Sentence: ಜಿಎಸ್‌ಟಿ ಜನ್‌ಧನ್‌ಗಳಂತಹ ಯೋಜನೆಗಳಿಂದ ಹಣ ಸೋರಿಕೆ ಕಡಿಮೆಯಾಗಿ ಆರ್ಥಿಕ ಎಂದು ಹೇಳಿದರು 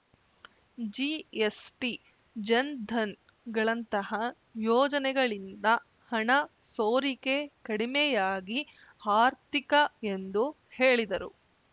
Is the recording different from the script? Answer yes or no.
no